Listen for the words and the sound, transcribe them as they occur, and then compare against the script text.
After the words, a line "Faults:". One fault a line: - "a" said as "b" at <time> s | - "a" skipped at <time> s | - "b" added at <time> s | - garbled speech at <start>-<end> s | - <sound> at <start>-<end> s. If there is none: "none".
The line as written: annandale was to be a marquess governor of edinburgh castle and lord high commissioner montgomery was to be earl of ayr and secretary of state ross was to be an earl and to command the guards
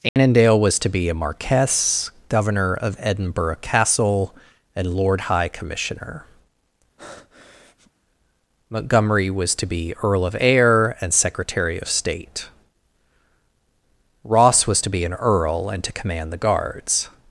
annandale was to be a marquess governor of edinburgh castle and lord high commissioner montgomery was to be earl of ayr and secretary of state ross was to be an earl and to command the guards
Faults:
- dropout at 0.1-0.2 s
- breath at 7.0-7.9 s